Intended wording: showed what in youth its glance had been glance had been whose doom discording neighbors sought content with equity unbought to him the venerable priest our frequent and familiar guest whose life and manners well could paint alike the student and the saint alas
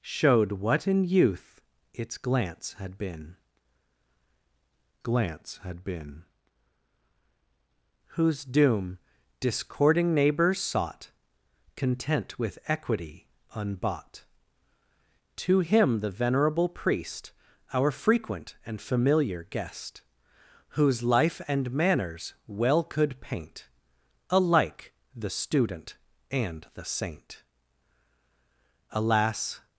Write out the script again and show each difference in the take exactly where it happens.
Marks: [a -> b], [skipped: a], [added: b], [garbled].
showed what in youth its glance had been glance had been whose doom discording neighbors sought content with equity unbought to him the venerable priest our frequent and familiar guest whose life and manners well could paint alike the student and the saint alas